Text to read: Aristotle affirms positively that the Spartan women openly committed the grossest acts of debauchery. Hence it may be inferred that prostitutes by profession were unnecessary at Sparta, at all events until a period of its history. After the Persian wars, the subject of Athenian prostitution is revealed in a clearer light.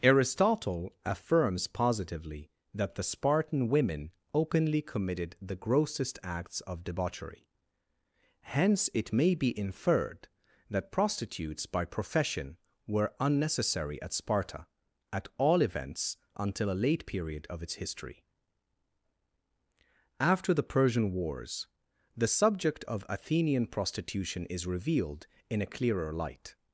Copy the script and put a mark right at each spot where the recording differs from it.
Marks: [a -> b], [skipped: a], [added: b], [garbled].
Aristotle affirms positively that the Spartan women openly committed the grossest acts of debauchery. Hence it may be inferred that prostitutes by profession were unnecessary at Sparta, at all events until a [added: late] period of its history. After the Persian wars, the subject of Athenian prostitution is revealed in a clearer light.